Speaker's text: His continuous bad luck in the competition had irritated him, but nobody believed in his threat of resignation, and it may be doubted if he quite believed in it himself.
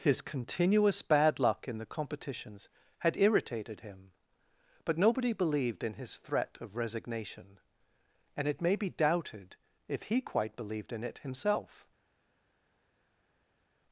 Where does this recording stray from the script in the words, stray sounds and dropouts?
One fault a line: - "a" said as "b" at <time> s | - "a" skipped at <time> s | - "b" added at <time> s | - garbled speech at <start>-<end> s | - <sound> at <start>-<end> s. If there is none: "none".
- "competition" said as "competitions" at 1.9 s